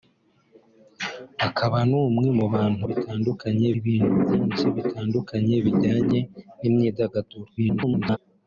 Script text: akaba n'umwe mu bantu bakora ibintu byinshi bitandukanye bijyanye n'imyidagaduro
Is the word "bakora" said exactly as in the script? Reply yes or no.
no